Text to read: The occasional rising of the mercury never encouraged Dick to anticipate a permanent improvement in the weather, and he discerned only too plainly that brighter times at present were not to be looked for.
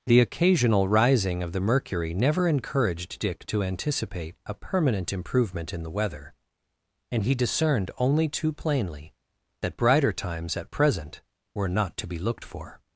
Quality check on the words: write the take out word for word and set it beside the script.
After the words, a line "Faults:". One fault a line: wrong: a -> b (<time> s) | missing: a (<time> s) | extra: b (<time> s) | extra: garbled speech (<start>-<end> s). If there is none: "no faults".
The occasional rising of the mercury never encouraged Dick to anticipate a permanent improvement in the weather, and he discerned only too plainly that brighter times at present were not to be looked for.
Faults:
no faults